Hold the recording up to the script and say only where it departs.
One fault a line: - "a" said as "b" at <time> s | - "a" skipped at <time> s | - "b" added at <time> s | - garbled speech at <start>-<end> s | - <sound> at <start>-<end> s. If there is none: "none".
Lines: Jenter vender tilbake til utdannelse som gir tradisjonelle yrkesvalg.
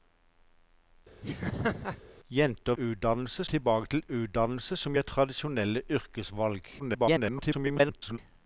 - laugh at 1.2-2.0 s
- "vender" said as "utdannelse" at 2.8 s
- garbled speech at 6.8-8.2 s